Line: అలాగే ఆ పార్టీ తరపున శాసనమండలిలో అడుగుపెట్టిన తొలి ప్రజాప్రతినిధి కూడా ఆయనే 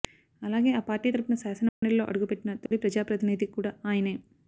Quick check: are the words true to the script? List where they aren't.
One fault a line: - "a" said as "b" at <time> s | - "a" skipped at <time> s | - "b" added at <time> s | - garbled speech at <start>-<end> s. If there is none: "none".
none